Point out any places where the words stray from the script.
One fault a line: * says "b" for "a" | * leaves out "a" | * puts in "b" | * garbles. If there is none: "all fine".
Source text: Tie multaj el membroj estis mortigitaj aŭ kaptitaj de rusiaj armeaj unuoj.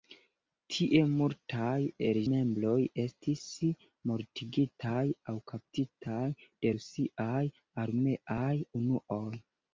all fine